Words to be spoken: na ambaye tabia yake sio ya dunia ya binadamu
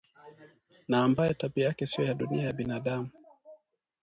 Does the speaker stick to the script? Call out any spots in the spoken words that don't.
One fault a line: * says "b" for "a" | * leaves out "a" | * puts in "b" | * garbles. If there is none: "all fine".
all fine